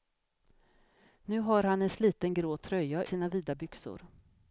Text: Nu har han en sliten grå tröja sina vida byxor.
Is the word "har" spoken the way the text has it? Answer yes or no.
yes